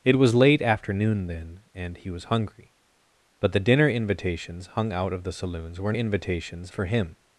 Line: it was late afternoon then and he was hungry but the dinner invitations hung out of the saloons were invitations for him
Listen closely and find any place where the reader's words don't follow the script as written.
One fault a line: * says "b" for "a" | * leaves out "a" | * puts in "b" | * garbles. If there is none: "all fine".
all fine